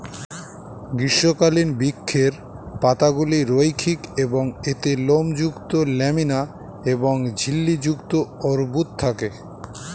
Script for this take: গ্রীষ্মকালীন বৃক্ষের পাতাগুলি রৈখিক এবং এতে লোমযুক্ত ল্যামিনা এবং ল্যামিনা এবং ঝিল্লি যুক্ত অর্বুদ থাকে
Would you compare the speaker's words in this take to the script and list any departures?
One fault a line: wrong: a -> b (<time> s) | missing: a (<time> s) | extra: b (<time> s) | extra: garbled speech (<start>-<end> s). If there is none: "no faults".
missing: ল্যামিনা এবং (7.1 s)